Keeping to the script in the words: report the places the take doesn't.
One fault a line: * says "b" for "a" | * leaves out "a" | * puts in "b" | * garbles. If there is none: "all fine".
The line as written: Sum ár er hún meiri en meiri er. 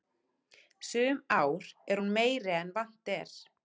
* says "vant" for "meiri"